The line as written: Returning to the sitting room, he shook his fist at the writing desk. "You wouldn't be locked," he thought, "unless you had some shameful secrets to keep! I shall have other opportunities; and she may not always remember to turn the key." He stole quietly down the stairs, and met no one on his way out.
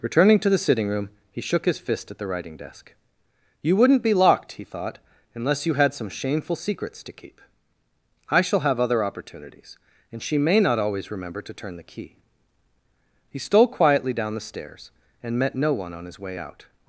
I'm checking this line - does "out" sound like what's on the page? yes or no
yes